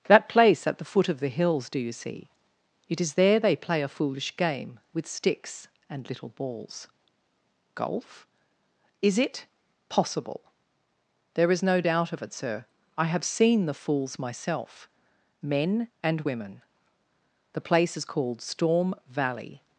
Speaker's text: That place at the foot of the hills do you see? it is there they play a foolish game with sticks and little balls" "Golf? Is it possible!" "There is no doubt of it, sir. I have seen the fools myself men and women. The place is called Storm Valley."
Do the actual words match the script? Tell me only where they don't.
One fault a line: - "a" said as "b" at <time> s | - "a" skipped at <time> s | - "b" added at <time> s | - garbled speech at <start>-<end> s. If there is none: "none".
none